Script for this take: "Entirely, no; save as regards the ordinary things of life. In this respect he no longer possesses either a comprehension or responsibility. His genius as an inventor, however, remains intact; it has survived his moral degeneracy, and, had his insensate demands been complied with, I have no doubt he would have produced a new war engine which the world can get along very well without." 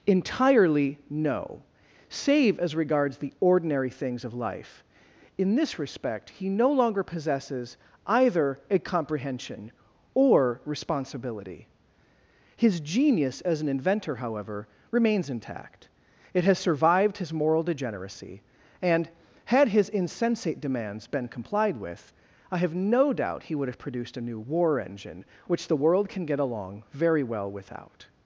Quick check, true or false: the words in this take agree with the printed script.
true